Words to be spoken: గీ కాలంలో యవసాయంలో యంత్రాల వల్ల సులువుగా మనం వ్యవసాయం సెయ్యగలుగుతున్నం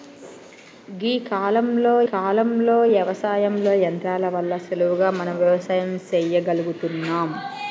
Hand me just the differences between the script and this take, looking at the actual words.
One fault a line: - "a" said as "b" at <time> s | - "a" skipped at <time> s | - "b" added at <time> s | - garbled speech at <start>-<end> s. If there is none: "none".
- "కాలంలో" added at 2.1 s